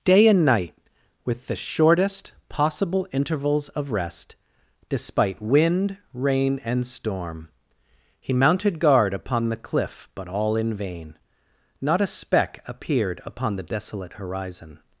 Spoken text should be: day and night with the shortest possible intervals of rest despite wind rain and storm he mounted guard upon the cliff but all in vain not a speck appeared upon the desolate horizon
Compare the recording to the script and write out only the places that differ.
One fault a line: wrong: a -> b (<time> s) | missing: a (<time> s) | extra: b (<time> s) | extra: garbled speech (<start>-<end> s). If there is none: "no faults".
no faults